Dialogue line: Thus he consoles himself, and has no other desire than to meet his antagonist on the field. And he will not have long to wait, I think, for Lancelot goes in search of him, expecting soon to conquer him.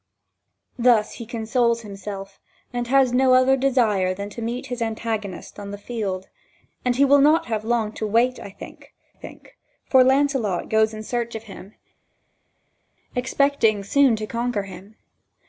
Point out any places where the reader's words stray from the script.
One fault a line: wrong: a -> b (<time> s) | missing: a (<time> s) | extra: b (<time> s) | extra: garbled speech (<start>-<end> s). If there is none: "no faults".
extra: think (9.1 s)